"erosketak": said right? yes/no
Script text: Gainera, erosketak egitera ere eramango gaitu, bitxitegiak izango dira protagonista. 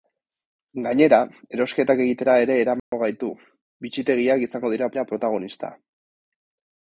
yes